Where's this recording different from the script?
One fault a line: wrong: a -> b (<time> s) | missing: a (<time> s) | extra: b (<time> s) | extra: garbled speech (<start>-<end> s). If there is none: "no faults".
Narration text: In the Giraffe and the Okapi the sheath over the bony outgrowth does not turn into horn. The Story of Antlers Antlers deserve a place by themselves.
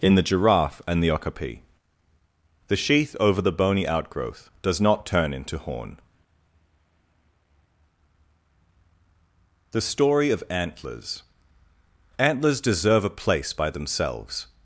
no faults